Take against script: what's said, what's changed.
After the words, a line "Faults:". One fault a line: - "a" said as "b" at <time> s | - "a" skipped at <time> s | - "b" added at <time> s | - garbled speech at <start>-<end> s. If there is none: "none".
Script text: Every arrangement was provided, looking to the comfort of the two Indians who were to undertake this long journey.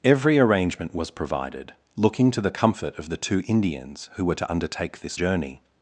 Every arrangement was provided, looking to the comfort of the two Indians who were to undertake this journey.
Faults:
- "long" skipped at 5.2 s